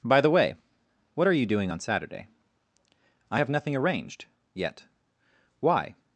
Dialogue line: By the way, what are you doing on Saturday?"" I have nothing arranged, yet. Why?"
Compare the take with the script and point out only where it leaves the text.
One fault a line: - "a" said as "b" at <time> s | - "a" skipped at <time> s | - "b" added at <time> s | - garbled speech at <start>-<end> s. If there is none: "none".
none